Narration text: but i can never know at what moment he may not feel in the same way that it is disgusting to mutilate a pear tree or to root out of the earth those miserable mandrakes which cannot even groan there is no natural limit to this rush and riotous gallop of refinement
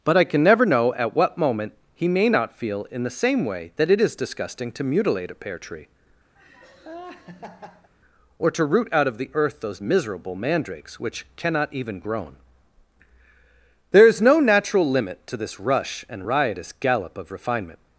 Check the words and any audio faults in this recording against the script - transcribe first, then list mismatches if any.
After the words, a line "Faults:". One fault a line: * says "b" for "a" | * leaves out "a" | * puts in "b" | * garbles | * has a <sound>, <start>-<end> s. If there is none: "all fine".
but i can never know at what moment he may not feel in the same way that it is disgusting to mutilate a pear tree or to root out of the earth those miserable mandrakes which cannot even groan there is no natural limit to this rush and riotous gallop of refinement
Faults:
* has a laugh, 6.4-7.9 s